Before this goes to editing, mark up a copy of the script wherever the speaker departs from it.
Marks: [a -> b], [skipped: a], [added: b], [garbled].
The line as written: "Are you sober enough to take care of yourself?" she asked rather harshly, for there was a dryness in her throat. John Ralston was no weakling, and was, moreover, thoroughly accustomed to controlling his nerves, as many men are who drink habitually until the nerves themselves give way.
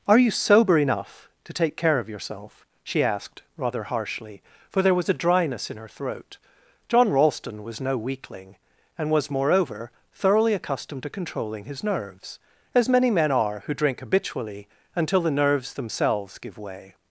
"Are you sober enough to take care of yourself?" she asked rather harshly, for there was a dryness in her throat. John Ralston was no weakling, and was, moreover, thoroughly accustomed to controlling his nerves, as many men are who drink habitually until the nerves themselves give way.